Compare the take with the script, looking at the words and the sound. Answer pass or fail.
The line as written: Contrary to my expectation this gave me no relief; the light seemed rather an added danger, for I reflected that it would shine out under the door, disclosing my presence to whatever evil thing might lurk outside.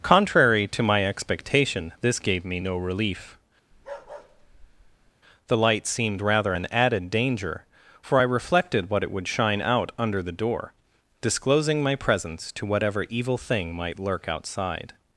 fail